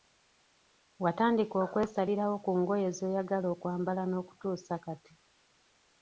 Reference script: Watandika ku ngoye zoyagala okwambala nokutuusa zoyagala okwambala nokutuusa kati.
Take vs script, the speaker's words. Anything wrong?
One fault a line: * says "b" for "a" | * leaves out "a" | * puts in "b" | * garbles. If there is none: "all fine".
* puts in "okwesalirawo"
* leaves out "zoyagala okwambala nokutuusa"